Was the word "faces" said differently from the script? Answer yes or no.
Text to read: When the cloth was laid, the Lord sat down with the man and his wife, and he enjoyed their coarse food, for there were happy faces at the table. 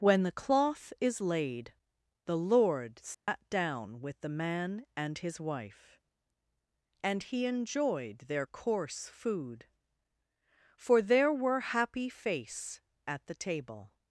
yes